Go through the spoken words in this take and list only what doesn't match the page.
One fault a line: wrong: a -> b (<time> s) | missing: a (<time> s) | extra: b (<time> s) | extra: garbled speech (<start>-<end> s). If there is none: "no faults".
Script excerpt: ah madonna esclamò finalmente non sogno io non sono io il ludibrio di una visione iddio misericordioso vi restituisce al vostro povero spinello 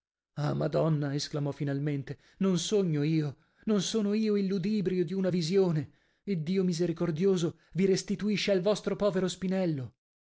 no faults